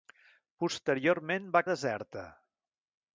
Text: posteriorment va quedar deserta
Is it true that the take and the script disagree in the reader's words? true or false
true